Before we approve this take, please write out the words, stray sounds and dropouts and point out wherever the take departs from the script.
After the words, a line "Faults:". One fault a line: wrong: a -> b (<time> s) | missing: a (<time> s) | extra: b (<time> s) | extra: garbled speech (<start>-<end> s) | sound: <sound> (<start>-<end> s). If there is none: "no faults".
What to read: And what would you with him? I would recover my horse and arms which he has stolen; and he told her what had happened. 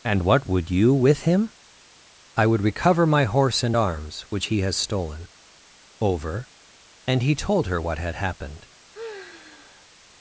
And what would you with him? I would recover my horse and arms which he has stolen; over and he told her what had happened.
Faults:
extra: over (6.0 s)
sound: sigh (8.9-9.9 s)